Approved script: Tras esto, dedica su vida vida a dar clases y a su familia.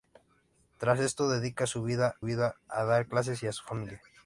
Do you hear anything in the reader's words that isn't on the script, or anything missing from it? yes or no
no